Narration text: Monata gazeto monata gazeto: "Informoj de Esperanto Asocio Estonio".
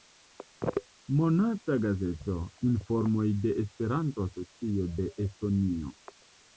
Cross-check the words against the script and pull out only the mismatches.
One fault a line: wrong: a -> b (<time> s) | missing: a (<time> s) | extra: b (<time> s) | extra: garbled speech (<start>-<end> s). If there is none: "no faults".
missing: monata gazeto (2.4 s)
extra: de (5.0 s)